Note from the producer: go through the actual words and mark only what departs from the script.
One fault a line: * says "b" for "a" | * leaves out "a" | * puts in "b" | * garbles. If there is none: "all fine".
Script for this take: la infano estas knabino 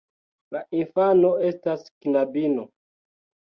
all fine